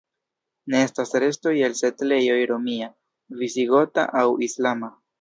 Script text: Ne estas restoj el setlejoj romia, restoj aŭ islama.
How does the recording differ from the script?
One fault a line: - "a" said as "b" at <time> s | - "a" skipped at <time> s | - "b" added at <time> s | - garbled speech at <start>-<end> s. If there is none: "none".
- "restoj" said as "visigota" at 3.5 s